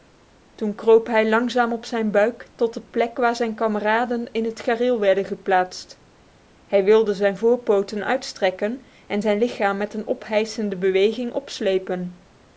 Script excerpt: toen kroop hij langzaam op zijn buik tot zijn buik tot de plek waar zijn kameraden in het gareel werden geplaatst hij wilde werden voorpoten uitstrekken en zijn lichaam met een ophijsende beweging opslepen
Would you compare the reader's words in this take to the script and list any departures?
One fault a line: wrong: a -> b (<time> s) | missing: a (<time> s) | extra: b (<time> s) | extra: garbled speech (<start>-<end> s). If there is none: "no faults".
missing: zijn buik tot (2.7 s)
wrong: werden -> zijn (7.1 s)